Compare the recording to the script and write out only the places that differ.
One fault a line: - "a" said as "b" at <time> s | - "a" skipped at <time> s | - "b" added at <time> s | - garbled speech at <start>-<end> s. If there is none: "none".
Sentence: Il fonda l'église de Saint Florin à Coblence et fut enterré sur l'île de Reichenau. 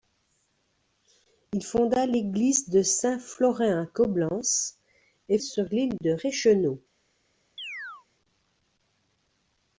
- "fut enterré" skipped at 5.4 s